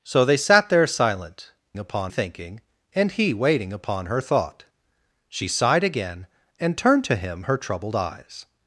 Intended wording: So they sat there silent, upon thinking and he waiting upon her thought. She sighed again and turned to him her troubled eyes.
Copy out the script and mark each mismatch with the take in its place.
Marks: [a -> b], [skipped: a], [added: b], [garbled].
So they sat there silent, upon thinking and he waiting upon her thought. She sighed again and turned to him her troubled eyes.